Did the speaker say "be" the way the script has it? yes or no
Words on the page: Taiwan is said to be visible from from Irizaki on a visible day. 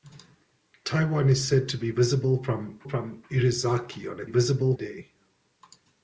yes